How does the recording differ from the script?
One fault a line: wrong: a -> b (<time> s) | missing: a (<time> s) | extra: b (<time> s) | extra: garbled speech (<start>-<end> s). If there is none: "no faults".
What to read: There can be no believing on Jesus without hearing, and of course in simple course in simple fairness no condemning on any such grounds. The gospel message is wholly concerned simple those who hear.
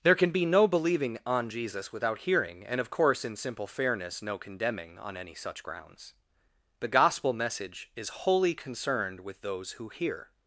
missing: course in simple (3.7 s)
wrong: simple -> with (9.2 s)